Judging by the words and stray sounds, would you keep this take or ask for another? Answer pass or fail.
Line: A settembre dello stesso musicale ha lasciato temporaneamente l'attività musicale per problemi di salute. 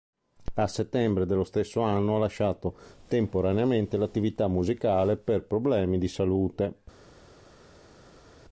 fail